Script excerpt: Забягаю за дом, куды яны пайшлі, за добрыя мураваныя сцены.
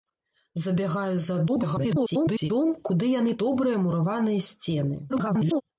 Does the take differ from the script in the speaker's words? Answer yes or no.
yes